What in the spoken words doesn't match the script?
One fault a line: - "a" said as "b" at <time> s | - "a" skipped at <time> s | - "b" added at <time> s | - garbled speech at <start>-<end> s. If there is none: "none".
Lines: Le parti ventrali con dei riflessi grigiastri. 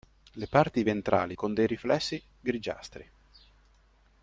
none